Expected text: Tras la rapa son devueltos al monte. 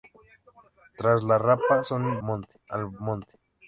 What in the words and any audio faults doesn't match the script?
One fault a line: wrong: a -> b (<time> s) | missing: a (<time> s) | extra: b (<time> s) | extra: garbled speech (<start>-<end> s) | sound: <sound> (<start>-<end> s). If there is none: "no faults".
wrong: devueltos -> monte (2.2 s)